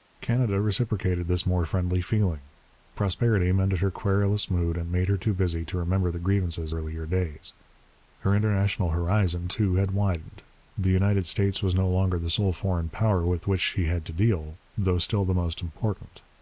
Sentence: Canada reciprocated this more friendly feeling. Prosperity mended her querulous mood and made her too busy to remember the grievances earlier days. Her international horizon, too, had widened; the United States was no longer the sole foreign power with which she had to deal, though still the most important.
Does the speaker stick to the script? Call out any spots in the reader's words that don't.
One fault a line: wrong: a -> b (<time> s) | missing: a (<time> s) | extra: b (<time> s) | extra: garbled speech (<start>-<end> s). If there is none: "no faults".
no faults